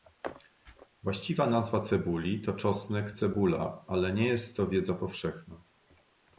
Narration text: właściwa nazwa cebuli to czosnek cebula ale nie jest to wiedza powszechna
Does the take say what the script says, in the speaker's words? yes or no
yes